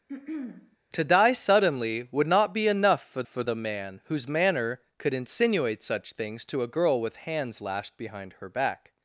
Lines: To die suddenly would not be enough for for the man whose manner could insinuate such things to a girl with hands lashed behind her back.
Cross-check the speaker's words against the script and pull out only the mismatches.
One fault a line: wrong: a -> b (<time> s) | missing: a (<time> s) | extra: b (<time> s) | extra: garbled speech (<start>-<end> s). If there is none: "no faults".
no faults